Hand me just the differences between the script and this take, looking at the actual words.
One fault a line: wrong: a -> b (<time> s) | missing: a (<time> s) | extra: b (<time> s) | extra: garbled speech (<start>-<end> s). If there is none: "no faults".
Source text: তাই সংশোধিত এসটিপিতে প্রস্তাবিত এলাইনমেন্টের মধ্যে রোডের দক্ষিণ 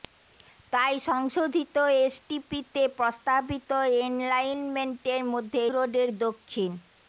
no faults